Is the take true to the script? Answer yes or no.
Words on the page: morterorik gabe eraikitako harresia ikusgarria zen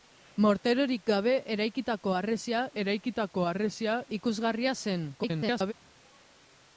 no